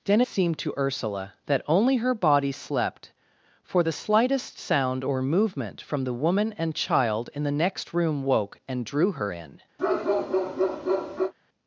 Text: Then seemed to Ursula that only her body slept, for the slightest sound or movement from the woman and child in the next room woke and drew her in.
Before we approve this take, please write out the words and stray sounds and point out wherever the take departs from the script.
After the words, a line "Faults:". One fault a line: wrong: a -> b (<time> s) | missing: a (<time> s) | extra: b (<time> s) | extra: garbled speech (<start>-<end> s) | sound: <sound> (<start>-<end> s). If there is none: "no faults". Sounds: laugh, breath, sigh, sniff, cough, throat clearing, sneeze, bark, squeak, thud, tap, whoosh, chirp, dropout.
Then seemed to Ursula that only her body slept, for the slightest sound or movement from the woman and child in the next room woke and drew her in.
Faults:
sound: bark (9.8-11.3 s)